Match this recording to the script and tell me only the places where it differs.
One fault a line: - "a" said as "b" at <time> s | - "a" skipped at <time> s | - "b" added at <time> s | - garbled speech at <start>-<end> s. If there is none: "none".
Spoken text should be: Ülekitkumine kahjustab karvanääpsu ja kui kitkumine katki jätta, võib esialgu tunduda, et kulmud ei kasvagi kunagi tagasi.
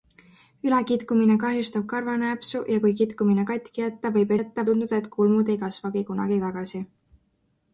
- "esialgu" said as "jätta" at 4.4 s